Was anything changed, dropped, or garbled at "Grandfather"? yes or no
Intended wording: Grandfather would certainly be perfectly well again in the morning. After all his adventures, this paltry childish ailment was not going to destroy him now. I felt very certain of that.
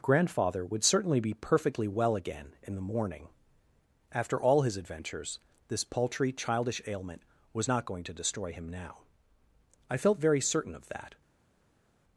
no